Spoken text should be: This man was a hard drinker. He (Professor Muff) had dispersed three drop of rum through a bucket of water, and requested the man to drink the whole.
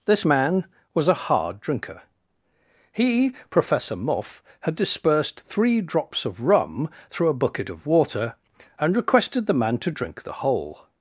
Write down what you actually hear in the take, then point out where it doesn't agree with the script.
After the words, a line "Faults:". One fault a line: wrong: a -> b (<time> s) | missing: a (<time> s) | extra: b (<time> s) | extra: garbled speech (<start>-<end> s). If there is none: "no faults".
This man was a hard drinker. He (Professor Muff) had dispersed three drops of rum through a bucket of water, and requested the man to drink the whole.
Faults:
wrong: drop -> drops (5.8 s)